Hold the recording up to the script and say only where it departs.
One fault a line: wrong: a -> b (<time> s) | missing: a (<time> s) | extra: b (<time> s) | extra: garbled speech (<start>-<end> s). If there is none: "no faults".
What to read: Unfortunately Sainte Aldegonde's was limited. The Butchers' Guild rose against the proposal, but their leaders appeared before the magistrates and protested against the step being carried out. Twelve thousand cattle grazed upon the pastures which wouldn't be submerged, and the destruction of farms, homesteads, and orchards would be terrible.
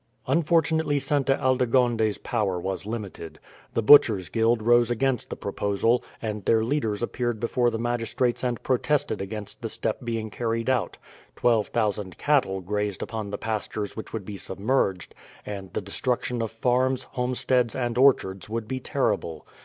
extra: power (2.2 s)
wrong: but -> and (6.2 s)
wrong: wouldn't -> would (14.1 s)